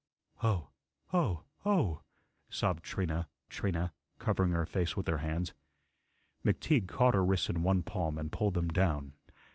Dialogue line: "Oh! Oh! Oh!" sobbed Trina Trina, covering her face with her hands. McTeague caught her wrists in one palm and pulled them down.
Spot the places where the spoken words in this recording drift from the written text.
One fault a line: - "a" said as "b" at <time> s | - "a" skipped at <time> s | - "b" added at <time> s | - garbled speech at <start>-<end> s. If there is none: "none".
none